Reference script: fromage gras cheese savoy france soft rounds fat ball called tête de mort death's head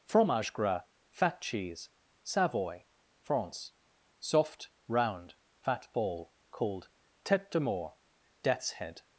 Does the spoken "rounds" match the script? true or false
false